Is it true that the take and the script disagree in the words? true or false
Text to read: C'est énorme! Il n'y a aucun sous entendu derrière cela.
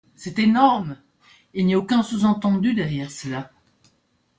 false